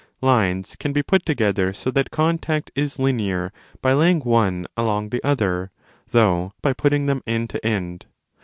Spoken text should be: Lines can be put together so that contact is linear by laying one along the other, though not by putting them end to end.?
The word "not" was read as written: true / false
false